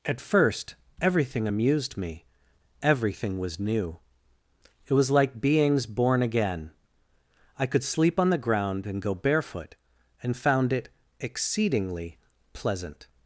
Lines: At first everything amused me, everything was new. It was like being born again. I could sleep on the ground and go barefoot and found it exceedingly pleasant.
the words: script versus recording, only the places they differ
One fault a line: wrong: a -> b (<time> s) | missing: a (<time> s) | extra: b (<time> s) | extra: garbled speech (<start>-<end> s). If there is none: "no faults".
wrong: being -> beings (5.4 s)